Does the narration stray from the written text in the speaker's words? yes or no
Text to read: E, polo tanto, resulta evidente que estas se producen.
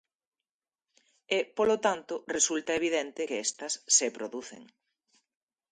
no